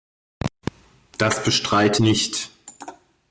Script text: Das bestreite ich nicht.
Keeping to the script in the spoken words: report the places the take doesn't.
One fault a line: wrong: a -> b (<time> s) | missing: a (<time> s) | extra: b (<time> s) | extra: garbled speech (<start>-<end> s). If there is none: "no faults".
missing: ich (2.0 s)